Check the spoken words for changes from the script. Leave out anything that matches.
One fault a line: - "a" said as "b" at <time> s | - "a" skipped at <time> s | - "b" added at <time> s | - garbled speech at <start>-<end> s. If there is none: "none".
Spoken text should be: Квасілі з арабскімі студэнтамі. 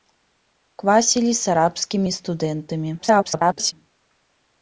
- garbled speech at 3.0-3.7 s